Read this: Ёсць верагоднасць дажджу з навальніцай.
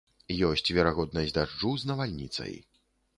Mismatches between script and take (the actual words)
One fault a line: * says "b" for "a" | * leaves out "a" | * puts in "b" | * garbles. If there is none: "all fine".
all fine